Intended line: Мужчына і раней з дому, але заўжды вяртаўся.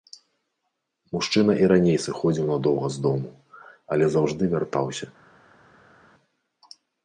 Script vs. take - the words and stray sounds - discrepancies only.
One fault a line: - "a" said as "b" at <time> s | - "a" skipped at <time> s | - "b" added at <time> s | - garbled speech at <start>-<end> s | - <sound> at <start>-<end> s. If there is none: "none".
- "сыходзіў надоўга" added at 2.0 s